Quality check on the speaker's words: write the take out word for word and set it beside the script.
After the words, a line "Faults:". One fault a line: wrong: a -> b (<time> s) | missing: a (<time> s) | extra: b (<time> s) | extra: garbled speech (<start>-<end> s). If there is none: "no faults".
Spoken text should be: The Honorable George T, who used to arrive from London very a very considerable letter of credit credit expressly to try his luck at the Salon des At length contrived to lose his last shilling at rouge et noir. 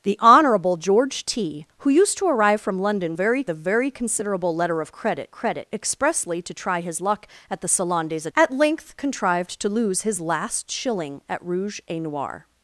The Honorable George T, who used to arrive from London very a very considerable letter of credit credit expressly to try his luck at the Salon des At length contrived to lose his last shilling at rouge et noir.
Faults:
no faults